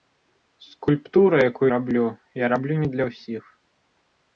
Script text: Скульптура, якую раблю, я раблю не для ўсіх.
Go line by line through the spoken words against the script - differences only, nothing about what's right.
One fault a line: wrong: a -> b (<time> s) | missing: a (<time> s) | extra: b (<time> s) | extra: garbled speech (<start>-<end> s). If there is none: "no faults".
no faults